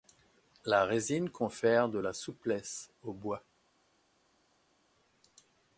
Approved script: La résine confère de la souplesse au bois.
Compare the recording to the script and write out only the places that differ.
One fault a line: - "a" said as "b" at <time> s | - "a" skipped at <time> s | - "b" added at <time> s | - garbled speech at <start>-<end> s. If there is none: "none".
none